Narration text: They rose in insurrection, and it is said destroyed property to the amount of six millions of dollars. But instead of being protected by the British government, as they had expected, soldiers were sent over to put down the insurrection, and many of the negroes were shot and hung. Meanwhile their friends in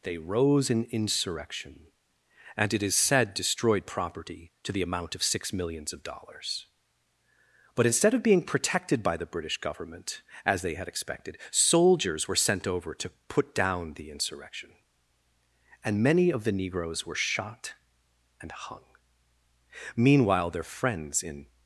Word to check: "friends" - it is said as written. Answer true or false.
true